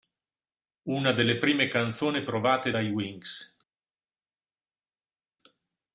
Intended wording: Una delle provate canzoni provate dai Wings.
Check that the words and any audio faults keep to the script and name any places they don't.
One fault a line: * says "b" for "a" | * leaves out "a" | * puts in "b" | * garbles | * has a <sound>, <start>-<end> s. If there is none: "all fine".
* says "prime" for "provate"